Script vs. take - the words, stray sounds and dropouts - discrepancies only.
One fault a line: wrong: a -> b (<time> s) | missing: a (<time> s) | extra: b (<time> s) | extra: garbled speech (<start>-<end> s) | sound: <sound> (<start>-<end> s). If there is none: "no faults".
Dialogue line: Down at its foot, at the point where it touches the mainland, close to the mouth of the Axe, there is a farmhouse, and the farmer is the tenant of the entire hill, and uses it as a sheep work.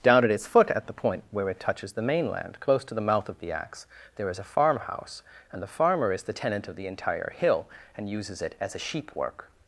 no faults